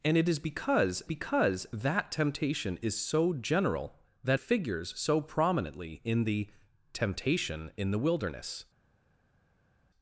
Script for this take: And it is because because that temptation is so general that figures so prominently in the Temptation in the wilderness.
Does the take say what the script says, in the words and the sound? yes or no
yes